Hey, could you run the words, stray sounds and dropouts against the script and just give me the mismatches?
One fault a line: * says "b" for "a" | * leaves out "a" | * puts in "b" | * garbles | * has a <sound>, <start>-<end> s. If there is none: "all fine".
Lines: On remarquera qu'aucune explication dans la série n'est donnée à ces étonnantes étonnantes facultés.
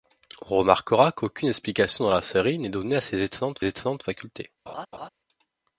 * has a laugh, 4.7-5.1 s